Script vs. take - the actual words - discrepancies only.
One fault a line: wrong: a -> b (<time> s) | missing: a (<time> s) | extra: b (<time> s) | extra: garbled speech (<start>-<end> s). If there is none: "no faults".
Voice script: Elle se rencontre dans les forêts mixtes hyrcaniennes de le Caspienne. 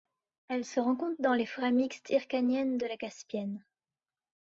wrong: le -> la (2.9 s)